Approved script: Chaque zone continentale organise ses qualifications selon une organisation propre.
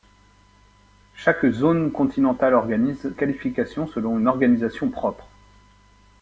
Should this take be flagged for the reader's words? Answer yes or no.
yes